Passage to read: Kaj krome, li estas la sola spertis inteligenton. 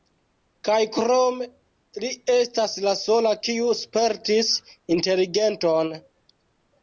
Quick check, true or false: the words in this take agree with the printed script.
false